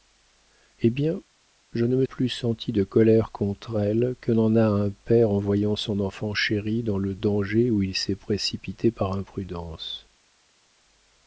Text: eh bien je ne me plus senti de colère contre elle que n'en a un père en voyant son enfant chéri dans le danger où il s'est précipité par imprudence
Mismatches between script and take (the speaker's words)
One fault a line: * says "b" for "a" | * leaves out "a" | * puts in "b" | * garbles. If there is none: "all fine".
all fine